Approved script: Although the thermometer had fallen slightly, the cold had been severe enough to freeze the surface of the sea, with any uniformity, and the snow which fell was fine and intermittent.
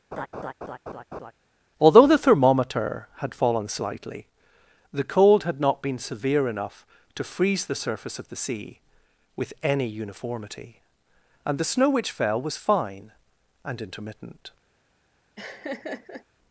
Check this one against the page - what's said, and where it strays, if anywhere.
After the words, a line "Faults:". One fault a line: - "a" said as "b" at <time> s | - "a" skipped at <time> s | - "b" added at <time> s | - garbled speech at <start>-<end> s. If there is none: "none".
Although the thermometer had fallen slightly, the cold had not been severe enough to freeze the surface of the sea, with any uniformity, and the snow which fell was fine and intermittent.
Faults:
- "not" added at 5.6 s